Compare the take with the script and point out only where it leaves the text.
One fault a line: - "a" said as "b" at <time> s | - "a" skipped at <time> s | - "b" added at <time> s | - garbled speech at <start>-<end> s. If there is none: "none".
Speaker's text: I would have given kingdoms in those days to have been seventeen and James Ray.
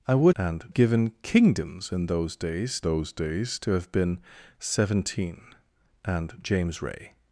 - "have" said as "and" at 0.4 s
- "those days" added at 2.8 s